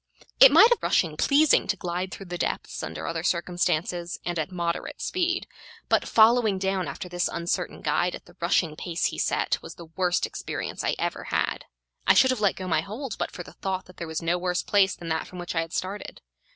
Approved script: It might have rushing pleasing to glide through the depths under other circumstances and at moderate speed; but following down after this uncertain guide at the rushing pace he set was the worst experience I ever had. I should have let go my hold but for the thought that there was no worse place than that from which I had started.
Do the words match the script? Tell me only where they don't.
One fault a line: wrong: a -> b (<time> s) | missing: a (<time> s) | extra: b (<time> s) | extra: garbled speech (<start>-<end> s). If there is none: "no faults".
no faults